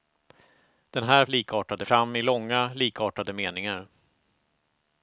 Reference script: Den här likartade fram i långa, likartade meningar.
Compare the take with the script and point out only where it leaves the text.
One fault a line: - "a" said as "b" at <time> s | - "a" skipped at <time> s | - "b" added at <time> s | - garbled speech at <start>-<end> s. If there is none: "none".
none